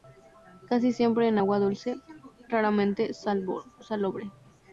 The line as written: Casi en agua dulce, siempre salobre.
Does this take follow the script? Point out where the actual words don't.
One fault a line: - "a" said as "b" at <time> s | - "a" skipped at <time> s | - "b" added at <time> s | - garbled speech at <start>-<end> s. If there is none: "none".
- "siempre" added at 0.9 s
- "siempre" said as "raramente" at 2.5 s